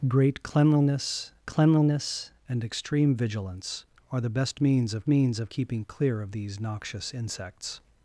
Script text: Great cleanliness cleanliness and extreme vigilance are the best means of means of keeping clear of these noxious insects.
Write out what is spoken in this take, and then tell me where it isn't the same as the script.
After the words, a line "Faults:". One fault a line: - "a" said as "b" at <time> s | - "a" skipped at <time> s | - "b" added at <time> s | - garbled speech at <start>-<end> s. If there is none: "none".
Great cleanliness cleanliness and extreme vigilance are the best means of means of keeping clear of these noxious insects.
Faults:
none